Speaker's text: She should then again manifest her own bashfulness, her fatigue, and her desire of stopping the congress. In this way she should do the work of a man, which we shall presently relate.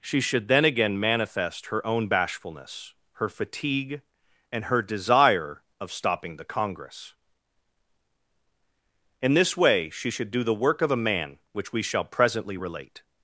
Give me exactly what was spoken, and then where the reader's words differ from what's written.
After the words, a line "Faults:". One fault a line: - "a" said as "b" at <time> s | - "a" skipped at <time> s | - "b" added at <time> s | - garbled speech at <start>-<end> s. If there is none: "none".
She should then again manifest her own bashfulness, her fatigue, and her desire of stopping the congress. In this way she should do the work of a man, which we shall presently relate.
Faults:
none